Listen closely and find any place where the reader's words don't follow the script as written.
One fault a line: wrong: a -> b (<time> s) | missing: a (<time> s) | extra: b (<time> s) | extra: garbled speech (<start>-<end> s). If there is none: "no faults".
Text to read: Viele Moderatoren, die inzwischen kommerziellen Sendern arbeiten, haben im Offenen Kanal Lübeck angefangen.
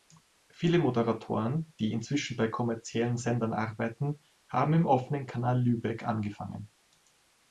extra: bei (2.4 s)